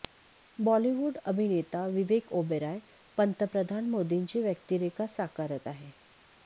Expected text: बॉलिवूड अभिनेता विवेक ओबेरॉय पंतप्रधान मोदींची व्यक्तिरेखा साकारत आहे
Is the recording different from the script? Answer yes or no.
no